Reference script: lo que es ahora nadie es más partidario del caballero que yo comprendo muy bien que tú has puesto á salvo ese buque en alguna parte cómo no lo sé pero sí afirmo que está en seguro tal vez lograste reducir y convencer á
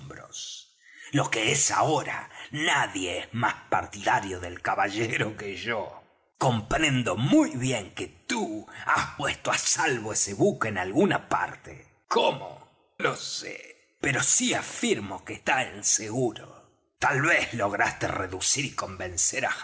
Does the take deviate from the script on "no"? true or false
true